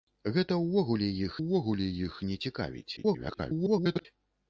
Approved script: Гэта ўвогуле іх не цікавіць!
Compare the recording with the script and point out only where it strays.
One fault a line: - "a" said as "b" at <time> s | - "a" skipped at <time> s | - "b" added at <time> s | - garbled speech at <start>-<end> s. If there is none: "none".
- "ўвогуле іх" added at 1.4 s
- garbled speech at 3.0-4.1 s